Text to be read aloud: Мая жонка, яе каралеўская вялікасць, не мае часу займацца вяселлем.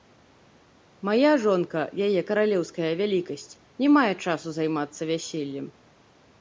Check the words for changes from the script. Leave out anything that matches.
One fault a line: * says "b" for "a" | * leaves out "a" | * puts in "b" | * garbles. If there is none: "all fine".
all fine